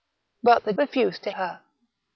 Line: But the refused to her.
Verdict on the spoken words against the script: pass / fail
pass